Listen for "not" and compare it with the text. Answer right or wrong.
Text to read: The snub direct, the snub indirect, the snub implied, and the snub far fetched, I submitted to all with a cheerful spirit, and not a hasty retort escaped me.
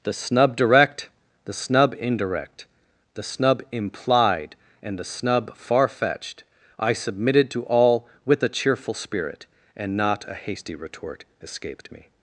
right